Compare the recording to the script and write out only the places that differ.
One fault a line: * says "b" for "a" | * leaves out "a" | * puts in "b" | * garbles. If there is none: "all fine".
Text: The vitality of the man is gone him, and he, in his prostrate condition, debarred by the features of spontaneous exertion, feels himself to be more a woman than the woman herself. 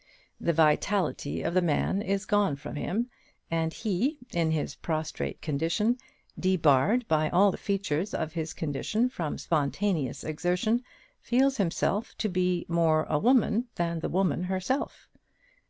* puts in "from"
* puts in "all"
* puts in "his condition from"